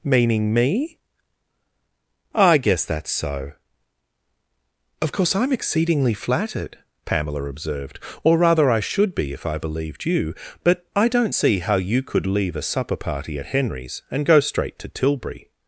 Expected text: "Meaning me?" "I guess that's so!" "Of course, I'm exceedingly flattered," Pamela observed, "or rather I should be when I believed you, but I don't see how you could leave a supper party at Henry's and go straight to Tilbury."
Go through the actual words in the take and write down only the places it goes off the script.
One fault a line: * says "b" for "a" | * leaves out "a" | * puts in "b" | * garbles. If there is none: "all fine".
* says "if" for "when"